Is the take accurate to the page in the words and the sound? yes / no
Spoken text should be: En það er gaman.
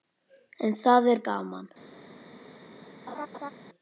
no